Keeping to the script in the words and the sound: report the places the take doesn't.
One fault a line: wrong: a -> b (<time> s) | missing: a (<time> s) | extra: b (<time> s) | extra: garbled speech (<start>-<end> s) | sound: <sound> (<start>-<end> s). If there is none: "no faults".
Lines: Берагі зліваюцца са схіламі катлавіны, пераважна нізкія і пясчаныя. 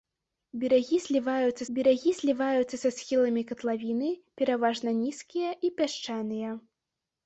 extra: берагі зліваюцца (1.8 s)